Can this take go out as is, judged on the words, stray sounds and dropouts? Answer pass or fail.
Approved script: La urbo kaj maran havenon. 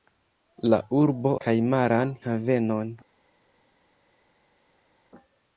pass